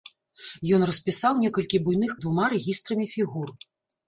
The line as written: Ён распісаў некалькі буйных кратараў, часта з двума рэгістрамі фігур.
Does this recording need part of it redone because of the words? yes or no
yes